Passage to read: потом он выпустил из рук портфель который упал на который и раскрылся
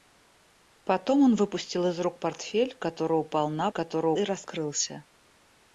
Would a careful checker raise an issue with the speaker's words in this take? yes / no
no